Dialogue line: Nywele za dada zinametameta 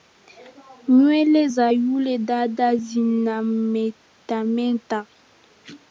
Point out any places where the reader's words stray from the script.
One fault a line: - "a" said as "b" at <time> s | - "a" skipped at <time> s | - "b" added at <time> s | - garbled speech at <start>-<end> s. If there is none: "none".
- "yule" added at 1.7 s